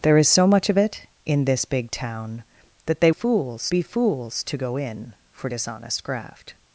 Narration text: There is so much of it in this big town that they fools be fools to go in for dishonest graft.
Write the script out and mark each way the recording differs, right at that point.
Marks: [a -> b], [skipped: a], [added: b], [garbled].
There is so much of it in this big town that they fools be fools to go in for dishonest graft.